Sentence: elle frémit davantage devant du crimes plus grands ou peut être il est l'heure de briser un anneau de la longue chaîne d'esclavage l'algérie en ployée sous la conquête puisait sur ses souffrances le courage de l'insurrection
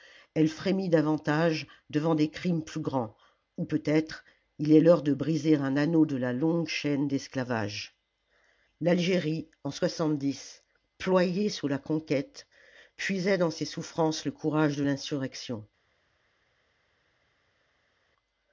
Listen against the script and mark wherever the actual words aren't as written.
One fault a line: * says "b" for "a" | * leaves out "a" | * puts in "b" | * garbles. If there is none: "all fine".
* says "des" for "du"
* says "dans" for "sur"